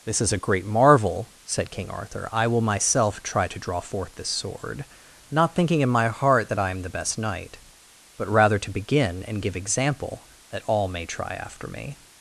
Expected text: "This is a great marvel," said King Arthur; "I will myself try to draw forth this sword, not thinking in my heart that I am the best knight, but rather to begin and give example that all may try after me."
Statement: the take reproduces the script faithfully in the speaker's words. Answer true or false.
true